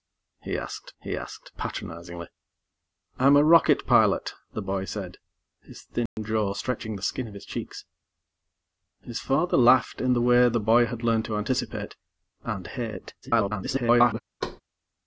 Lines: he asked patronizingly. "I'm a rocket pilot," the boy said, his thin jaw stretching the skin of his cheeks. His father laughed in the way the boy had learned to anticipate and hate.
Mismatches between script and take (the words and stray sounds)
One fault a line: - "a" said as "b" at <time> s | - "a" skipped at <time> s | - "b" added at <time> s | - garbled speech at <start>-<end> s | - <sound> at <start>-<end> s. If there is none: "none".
- "he asked" added at 1.0 s
- dropout at 6.1-6.2 s
- garbled speech at 13.2-14.2 s
- thud at 14.4-14.6 s